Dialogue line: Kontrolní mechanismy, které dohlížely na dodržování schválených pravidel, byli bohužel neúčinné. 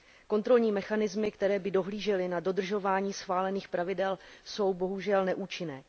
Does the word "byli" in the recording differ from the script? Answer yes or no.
yes